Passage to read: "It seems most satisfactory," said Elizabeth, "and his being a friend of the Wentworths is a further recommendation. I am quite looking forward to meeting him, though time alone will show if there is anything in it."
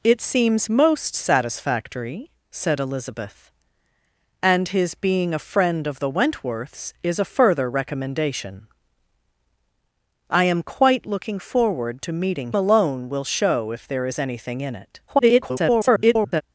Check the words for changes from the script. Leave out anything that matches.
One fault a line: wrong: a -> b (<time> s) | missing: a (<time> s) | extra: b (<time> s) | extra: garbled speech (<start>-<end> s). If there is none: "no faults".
missing: him though time (12.5 s)
extra: garbled speech (15.1-16.4 s)